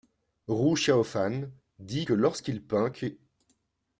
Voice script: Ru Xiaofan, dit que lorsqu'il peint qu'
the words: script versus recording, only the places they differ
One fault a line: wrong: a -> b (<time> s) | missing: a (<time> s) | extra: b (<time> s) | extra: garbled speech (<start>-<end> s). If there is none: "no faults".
no faults